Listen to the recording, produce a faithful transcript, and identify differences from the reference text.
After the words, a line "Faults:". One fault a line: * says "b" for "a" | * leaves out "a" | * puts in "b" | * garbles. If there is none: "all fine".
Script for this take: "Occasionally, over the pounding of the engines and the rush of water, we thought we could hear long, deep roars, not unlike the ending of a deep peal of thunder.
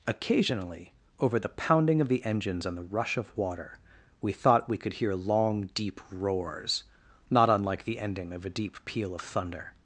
"Occasionally, over the pounding of the engines and the rush of water, we thought we could hear long, deep roars, not unlike the ending of a deep peal of thunder.
Faults:
all fine